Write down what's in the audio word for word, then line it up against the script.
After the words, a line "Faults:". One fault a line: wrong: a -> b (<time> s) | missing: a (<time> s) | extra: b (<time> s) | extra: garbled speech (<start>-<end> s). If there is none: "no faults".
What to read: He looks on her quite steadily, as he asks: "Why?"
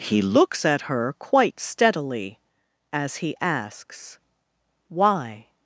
He looks at her quite steadily, as he asks: "Why?"
Faults:
wrong: on -> at (0.7 s)